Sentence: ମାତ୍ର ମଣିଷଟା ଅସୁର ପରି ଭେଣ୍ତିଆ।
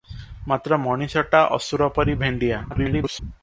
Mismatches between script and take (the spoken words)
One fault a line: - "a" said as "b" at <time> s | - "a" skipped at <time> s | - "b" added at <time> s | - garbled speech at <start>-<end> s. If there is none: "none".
- garbled speech at 2.7-3.2 s